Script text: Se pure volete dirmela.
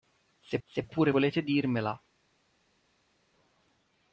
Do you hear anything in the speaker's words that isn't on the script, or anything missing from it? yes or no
yes